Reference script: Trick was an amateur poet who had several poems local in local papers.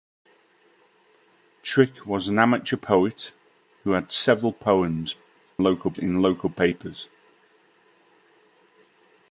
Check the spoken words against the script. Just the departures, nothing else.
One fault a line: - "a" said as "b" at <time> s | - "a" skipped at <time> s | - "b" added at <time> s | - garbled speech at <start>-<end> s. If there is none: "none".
none